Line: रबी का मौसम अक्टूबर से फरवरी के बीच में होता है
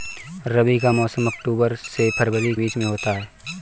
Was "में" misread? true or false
false